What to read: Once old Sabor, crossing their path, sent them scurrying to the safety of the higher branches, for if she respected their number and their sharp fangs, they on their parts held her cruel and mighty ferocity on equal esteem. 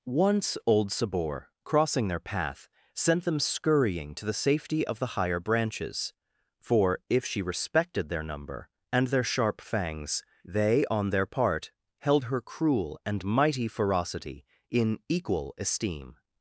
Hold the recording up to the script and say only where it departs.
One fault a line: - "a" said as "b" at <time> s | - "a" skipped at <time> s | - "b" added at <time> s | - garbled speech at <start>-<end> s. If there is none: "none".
- "parts" said as "part" at 11.3 s
- "on" said as "in" at 14.7 s